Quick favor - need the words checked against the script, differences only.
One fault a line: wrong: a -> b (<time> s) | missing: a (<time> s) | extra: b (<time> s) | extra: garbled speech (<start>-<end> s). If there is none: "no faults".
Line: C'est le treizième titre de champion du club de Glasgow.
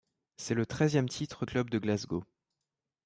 missing: de champion du (1.4 s)